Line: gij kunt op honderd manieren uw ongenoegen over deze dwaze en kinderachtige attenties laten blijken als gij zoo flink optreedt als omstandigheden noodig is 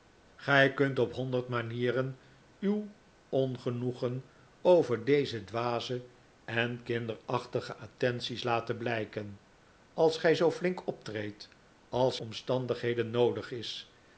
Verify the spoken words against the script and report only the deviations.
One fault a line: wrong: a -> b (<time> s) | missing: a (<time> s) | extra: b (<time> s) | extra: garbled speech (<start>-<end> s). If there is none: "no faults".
no faults